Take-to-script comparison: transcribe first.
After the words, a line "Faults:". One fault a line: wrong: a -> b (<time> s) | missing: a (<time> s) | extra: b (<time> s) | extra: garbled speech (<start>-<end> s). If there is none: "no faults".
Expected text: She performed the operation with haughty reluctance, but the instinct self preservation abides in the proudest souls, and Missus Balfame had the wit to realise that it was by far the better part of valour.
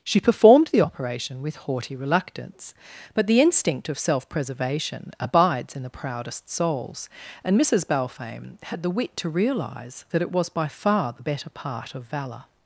She performed the operation with haughty reluctance, but the instinct of self preservation abides in the proudest souls, and Missus Balfame had the wit to realise that it was by far the better part of valour.
Faults:
extra: of (3.9 s)